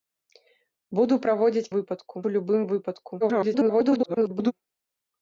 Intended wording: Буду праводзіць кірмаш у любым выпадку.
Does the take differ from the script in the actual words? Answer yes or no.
yes